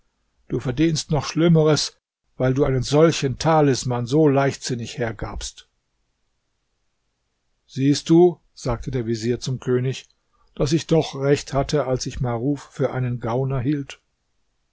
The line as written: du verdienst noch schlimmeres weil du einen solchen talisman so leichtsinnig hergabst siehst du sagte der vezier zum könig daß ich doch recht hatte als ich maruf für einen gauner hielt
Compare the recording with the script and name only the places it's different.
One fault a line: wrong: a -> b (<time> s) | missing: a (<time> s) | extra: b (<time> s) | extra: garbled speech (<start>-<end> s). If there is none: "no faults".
no faults